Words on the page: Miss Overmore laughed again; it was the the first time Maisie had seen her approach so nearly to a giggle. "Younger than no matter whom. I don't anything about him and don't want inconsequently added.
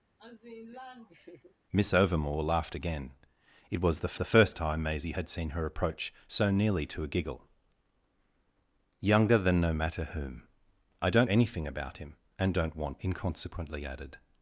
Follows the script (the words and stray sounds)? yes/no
no